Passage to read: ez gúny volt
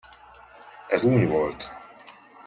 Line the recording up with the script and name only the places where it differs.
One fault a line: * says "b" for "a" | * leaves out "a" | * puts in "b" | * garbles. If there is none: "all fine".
all fine